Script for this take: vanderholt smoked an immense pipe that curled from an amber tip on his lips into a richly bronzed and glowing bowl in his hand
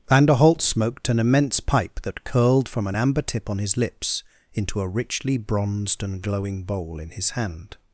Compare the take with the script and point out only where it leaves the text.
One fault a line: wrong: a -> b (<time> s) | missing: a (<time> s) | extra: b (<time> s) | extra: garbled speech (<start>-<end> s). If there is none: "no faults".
no faults